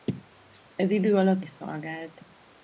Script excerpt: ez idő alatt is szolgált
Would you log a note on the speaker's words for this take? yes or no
no